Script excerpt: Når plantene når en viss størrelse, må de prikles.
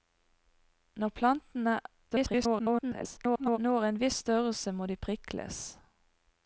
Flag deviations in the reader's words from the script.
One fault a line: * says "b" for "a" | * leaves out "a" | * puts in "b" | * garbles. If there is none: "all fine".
* garbles